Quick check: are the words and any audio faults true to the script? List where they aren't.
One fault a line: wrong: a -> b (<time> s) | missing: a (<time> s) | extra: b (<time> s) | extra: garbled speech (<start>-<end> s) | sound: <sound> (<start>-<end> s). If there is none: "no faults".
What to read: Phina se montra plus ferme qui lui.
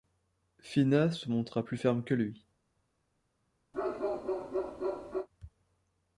wrong: qui -> que (2.0 s)
sound: bark (3.7-5.3 s)